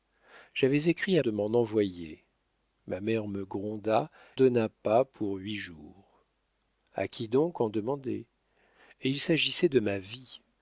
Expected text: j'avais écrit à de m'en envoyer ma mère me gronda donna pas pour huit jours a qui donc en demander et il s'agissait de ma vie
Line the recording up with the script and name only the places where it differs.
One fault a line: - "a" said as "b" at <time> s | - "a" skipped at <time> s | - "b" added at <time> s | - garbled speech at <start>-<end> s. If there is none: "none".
none